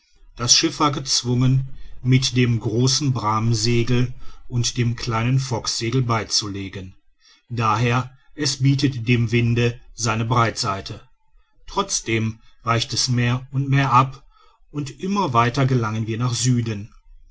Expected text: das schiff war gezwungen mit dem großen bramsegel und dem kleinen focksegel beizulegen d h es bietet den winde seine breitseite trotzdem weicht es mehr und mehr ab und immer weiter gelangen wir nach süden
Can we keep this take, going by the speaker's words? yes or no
no